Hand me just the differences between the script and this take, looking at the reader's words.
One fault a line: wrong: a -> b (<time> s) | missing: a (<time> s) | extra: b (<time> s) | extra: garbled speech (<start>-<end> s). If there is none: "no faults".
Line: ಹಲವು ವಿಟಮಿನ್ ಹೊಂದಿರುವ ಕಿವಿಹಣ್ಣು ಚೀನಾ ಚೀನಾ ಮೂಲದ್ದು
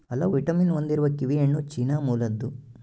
missing: ಚೀನಾ (2.0 s)